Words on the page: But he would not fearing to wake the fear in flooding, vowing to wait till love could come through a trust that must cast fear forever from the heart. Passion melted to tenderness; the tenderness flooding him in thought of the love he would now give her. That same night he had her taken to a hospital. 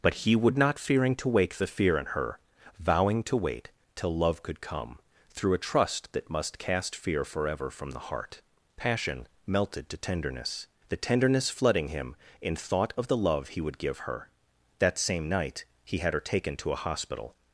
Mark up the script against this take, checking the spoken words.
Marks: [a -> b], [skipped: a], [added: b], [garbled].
But he would not fearing to wake the fear in [flooding, -> her] vowing to wait till love could come through a trust that must cast fear forever from the heart. Passion melted to tenderness; the tenderness flooding him in thought of the love he would [skipped: now] give her. That same night he had her taken to a hospital.